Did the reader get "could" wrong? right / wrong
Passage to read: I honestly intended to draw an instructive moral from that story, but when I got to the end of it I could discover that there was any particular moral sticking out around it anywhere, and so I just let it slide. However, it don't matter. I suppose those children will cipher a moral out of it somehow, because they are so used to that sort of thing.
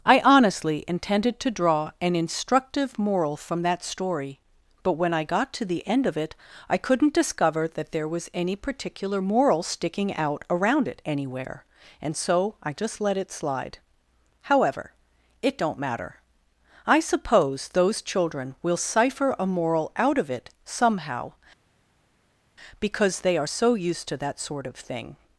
wrong